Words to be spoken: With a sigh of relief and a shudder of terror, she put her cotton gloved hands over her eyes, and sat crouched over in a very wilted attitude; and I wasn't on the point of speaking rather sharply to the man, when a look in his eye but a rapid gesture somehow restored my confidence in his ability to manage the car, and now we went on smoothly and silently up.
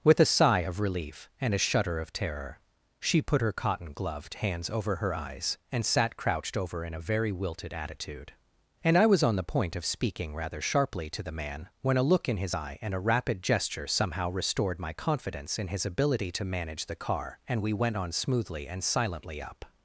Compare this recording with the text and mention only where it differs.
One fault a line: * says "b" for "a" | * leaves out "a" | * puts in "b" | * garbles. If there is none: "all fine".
* says "was" for "wasn't"
* says "and" for "but"
* leaves out "now"